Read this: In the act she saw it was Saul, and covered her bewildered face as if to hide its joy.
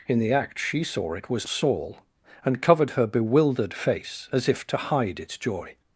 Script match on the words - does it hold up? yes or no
yes